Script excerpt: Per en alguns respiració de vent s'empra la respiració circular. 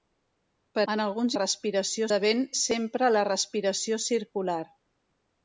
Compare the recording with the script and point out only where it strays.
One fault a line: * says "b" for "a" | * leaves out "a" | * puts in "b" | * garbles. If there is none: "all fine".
all fine